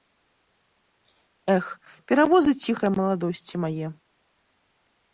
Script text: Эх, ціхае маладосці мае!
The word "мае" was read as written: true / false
true